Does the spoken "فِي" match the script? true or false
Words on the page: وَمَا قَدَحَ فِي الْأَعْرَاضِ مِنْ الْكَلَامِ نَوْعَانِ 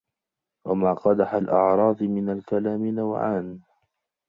false